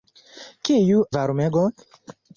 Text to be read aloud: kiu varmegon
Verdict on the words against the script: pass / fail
pass